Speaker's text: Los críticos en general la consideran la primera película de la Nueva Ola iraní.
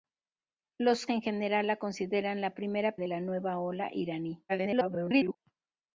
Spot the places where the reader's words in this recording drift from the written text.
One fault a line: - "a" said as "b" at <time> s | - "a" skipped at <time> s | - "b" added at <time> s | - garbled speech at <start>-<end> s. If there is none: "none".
- "críticos" skipped at 1.1 s
- "película" skipped at 3.0 s
- garbled speech at 4.5-5.4 s